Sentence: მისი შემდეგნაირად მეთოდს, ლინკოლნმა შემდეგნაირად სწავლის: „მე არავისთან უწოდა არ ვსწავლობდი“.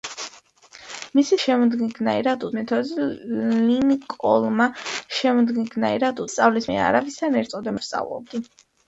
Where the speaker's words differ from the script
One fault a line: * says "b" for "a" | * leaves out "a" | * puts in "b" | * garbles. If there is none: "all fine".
all fine